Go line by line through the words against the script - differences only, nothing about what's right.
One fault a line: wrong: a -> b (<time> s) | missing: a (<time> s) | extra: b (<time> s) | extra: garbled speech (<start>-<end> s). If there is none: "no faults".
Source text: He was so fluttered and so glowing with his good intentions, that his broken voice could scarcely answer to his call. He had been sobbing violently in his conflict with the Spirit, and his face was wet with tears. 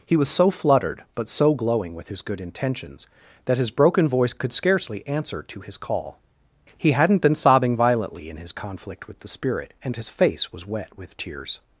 wrong: and -> but (1.1 s)
wrong: had -> hadn't (6.9 s)